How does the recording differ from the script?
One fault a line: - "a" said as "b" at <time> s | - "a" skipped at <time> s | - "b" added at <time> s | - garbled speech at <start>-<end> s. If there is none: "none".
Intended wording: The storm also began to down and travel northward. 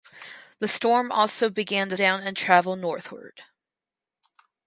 none